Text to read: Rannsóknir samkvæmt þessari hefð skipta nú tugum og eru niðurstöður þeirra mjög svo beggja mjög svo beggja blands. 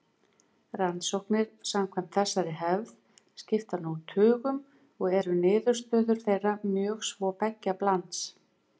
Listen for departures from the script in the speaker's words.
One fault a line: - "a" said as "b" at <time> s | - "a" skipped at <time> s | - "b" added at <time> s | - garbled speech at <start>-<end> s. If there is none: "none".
- "mjög svo beggja" skipped at 7.8 s